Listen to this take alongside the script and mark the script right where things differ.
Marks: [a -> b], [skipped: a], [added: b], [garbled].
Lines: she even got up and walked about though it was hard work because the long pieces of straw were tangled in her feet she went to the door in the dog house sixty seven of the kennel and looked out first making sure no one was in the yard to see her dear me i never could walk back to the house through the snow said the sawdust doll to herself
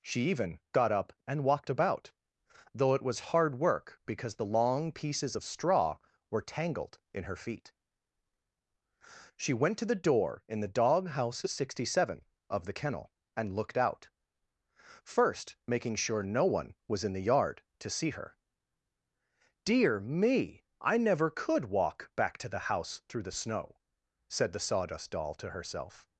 she even got up and walked about though it was hard work because the long pieces of straw were tangled in her feet she went to the door in the dog house sixty seven of the kennel and looked out first making sure no one was in the yard to see her dear me i never could walk back to the house through the snow said the sawdust doll to herself